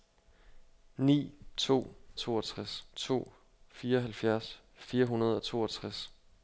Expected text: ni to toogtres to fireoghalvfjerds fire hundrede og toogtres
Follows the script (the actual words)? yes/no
yes